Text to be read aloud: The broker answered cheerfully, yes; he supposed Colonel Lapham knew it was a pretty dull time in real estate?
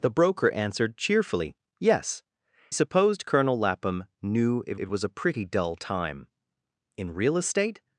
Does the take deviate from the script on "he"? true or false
true